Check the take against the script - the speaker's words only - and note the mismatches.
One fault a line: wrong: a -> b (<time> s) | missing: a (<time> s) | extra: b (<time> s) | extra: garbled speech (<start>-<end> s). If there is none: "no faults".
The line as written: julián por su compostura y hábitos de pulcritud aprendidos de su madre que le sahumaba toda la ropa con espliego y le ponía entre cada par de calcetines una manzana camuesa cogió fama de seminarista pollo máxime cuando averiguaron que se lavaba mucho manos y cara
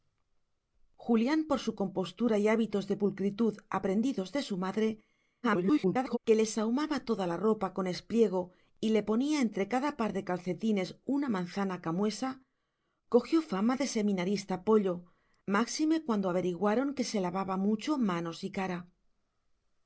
extra: garbled speech (5.4-6.2 s)